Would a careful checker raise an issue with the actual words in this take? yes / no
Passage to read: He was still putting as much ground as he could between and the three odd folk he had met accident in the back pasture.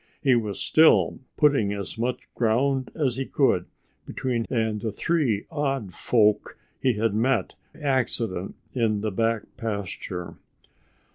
no